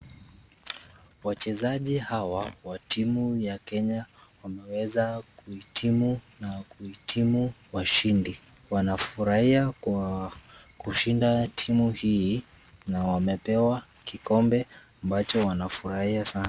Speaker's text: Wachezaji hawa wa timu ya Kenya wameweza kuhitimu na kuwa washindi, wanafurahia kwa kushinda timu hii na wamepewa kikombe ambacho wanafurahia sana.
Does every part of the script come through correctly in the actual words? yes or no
no